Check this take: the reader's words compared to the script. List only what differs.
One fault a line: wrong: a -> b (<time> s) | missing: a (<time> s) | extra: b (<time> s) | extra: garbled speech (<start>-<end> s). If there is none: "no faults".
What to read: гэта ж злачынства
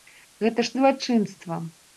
no faults